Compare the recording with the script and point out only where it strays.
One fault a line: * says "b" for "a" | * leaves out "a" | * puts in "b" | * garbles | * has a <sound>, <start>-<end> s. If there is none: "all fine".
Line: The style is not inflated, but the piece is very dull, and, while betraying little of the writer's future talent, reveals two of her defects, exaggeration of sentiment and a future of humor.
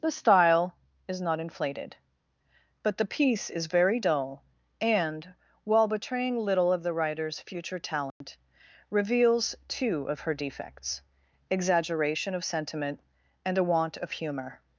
* has a dropout, 8.1-8.2 s
* says "want" for "future"